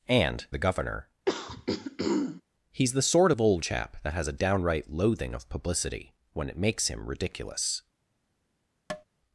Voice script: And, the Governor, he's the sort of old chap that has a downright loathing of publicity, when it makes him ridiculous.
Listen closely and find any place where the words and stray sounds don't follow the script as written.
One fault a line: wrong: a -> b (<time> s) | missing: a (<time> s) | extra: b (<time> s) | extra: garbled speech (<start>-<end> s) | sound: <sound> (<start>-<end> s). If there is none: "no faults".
sound: throat clearing (1.3-2.4 s)
sound: tap (8.9-9.0 s)